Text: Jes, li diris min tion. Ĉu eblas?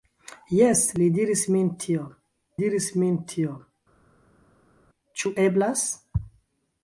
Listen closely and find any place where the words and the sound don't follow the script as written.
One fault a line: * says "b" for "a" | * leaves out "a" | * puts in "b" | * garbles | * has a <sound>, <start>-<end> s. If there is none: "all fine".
* puts in "diris min tion"